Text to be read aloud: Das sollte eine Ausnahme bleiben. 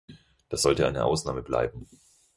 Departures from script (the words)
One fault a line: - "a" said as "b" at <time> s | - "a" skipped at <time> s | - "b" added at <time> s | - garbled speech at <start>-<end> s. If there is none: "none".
none